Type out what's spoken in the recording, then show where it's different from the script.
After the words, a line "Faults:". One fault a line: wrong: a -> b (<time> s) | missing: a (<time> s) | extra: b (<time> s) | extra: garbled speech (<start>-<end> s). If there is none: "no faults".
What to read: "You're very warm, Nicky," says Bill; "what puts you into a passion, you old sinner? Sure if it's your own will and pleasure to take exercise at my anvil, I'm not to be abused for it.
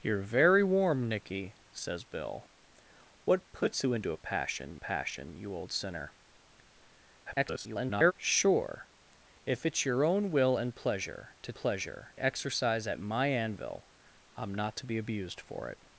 "You're very warm, Nicky," says Bill; "what puts you into a passion passion, you old sinner? [garbled] Sure if it's your own will and pleasure to pleasure exercise at my anvil, I'm not to be abused for it.
Faults:
extra: passion (4.7 s)
extra: garbled speech (7.3-8.1 s)
wrong: take -> pleasure (11.5 s)